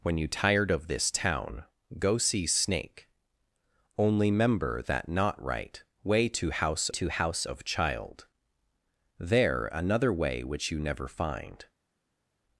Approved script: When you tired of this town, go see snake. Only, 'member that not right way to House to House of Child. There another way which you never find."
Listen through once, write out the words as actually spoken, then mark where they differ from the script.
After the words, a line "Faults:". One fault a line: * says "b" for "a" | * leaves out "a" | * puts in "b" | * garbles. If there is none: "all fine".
When you tired of this town, go see snake. Only, 'member that not right way to House to House of Child. There another way which you never find."
Faults:
all fine